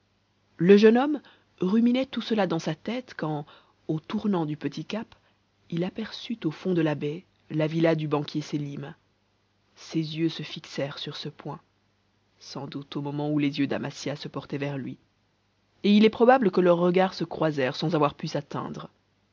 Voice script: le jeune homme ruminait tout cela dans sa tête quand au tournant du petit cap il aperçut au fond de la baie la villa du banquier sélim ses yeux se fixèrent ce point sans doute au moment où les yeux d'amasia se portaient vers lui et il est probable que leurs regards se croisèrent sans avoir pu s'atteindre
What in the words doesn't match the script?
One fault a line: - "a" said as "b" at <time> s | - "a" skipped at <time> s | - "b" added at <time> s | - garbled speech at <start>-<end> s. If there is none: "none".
- "sur" added at 11.0 s